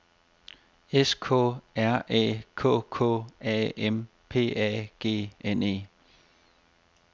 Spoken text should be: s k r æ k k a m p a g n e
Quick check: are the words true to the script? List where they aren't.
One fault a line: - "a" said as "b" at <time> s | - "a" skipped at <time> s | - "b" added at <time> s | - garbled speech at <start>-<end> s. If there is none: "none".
none